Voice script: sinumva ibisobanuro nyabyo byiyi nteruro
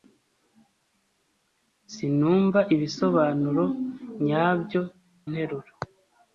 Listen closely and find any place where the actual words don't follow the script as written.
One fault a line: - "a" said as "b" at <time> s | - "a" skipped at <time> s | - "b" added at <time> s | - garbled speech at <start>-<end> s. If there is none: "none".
- "byiyi" skipped at 4.8 s